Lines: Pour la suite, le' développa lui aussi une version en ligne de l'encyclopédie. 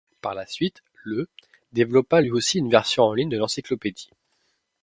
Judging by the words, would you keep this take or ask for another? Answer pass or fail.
fail